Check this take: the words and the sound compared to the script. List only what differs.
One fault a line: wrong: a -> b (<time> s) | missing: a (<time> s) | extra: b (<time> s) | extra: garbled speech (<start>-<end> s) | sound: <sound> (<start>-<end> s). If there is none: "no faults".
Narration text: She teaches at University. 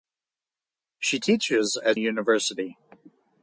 no faults